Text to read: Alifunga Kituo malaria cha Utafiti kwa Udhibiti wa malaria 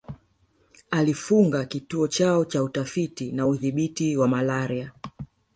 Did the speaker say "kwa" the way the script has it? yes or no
no